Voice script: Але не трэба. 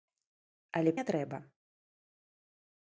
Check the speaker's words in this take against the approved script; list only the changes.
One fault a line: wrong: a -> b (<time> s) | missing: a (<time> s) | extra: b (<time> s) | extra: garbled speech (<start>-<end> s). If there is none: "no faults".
no faults